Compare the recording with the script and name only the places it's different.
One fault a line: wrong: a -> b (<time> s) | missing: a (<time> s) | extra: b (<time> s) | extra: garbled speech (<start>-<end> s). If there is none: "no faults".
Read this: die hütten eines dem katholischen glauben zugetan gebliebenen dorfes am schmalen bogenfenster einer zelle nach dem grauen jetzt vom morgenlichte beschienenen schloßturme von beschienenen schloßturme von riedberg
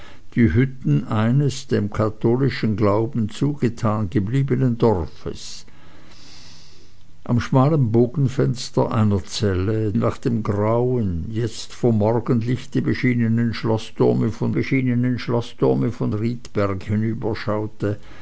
no faults